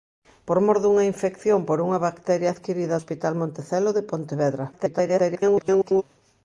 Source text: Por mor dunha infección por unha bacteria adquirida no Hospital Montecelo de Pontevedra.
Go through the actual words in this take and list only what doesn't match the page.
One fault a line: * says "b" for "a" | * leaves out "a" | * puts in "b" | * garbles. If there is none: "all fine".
* leaves out "no"
* garbles